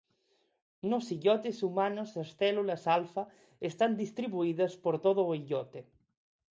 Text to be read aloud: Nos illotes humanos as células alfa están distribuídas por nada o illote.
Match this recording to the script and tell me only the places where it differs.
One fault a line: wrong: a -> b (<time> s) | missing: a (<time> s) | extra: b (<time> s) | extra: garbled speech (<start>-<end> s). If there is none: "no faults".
wrong: nada -> todo (5.0 s)